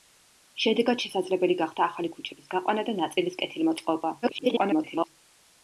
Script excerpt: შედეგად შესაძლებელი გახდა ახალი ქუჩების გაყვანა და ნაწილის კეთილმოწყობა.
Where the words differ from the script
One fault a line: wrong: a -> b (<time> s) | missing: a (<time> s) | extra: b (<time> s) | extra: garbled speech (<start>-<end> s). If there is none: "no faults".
extra: garbled speech (4.2-5.1 s)